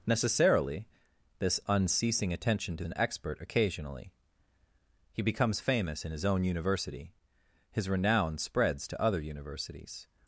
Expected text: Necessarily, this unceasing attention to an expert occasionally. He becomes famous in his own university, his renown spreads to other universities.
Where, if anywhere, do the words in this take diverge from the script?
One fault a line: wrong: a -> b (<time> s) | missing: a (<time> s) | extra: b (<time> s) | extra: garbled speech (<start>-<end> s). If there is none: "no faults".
no faults